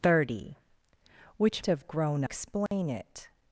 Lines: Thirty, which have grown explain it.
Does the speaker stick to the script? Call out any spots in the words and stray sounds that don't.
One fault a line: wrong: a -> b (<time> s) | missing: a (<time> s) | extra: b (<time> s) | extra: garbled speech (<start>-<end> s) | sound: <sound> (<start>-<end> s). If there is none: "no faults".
sound: dropout (2.7-2.7 s)